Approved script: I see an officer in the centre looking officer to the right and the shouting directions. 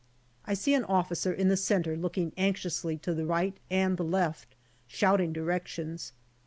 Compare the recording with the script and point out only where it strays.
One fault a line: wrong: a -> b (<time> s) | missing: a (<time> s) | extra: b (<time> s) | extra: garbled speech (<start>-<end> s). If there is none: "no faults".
wrong: officer -> anxiously (2.4 s)
extra: left (4.0 s)